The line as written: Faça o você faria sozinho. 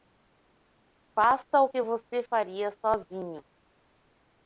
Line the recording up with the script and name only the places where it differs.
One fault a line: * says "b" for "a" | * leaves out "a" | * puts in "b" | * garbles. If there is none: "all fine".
* puts in "que"